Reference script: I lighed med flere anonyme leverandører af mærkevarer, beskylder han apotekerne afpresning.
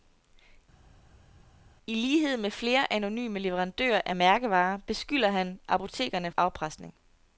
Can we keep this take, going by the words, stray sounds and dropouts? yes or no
yes